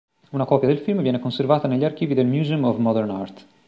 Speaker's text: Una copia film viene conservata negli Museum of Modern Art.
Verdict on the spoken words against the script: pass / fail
fail